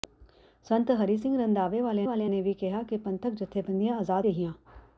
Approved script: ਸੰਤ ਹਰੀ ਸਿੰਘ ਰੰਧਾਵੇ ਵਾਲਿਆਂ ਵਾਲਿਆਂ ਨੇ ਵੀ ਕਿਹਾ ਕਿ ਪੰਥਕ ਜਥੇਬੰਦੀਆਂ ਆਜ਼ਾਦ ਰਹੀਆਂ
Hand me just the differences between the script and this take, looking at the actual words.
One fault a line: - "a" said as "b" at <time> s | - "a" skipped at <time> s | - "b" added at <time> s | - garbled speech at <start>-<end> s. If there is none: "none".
none